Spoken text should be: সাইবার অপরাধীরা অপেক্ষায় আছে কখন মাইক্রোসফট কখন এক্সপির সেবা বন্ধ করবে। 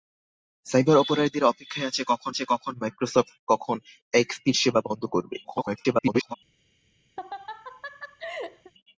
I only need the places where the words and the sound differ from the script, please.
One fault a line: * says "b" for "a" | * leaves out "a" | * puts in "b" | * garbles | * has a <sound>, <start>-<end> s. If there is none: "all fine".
* puts in "আছে কখন"
* garbles
* has a laugh, 7.2-8.7 s